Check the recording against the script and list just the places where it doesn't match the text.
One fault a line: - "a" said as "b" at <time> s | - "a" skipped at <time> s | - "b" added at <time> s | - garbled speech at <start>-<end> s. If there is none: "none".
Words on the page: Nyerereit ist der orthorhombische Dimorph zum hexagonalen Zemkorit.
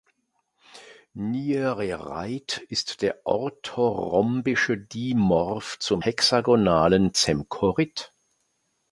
none